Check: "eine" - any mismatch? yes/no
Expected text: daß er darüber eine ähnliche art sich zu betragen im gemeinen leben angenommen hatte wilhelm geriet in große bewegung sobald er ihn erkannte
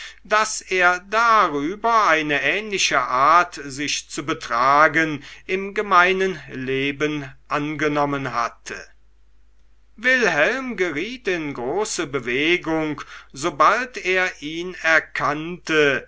no